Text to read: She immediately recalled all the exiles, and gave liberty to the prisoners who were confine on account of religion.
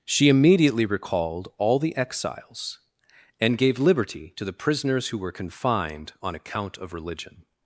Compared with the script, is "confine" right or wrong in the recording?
wrong